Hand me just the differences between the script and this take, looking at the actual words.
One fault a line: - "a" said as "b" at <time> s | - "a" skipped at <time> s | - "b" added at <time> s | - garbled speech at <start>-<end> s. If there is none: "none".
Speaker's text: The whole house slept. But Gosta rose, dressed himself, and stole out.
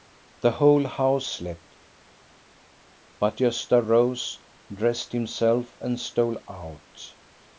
none